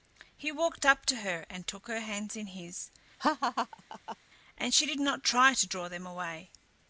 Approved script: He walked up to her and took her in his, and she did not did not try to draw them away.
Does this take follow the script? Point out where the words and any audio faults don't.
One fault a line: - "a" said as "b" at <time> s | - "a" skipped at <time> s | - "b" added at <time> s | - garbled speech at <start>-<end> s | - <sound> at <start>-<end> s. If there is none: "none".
- "hands" added at 2.0 s
- laugh at 3.2-4.2 s
- "did not" skipped at 5.2 s